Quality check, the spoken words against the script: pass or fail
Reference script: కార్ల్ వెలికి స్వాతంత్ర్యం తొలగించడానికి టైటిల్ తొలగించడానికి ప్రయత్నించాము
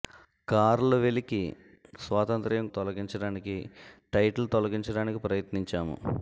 pass